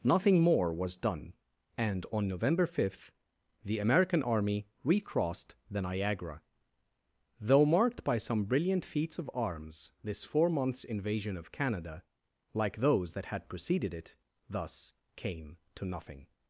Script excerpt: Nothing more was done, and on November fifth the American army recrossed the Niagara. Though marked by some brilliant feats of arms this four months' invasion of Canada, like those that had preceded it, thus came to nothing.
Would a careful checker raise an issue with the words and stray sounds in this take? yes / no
no